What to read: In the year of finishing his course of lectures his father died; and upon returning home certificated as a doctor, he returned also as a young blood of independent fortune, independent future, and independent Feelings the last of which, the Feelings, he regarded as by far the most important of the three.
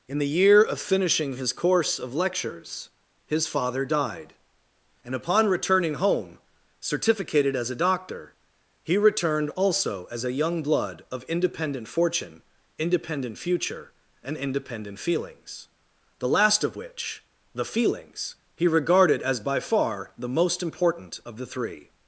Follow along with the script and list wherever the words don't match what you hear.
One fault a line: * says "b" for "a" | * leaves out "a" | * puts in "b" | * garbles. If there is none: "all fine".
all fine